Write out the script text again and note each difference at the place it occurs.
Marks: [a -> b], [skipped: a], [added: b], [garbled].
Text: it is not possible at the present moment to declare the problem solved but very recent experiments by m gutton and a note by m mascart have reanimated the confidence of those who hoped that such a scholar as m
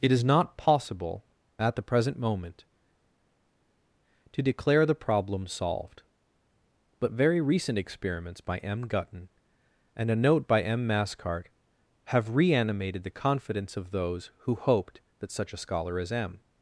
it is not possible at the present moment to declare the problem solved but very recent experiments by m gutton and a note by m mascart have reanimated the confidence of those who hoped that such a scholar as m